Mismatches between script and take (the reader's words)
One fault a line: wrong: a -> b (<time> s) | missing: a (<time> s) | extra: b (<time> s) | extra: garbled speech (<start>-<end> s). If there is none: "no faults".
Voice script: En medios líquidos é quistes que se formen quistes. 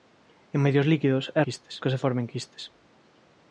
no faults